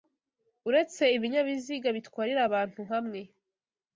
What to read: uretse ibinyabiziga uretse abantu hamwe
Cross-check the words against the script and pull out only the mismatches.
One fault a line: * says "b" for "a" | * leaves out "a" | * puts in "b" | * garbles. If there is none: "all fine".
* says "bitwarira" for "uretse"